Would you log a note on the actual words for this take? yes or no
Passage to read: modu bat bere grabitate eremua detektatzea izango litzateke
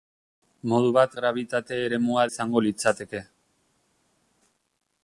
yes